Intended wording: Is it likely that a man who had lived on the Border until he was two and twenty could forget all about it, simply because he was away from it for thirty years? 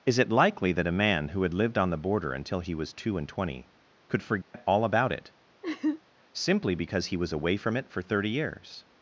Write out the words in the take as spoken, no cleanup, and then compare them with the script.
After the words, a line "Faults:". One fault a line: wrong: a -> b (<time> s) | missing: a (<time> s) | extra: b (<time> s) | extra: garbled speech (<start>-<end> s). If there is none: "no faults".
Is it likely that a man who had lived on the Border until he was two and twenty could forget all about it, simply because he was away from it for thirty years?
Faults:
no faults